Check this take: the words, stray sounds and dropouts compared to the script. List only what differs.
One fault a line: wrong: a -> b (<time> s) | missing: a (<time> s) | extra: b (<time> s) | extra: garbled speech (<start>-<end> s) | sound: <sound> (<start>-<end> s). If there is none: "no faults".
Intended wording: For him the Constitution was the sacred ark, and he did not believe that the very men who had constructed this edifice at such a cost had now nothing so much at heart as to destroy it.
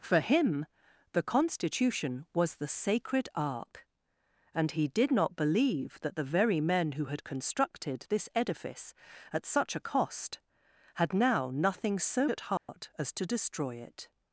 missing: much (12.3 s)
sound: dropout (12.6-12.7 s)